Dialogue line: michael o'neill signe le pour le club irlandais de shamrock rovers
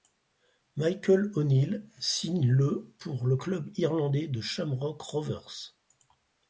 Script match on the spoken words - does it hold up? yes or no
yes